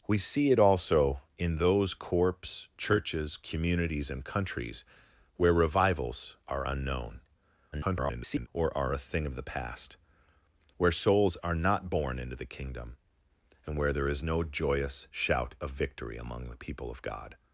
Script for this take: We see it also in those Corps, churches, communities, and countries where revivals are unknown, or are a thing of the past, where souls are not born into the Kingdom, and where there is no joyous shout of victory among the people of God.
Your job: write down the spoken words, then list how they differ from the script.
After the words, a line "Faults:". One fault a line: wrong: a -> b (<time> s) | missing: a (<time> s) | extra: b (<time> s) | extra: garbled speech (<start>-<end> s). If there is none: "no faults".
We see it also in those Corps, churches, communities, and countries where revivals are unknown, [garbled] or are a thing of the past, where souls are not born into the Kingdom, and where there is no joyous shout of victory among the people of God.
Faults:
extra: garbled speech (7.7-8.5 s)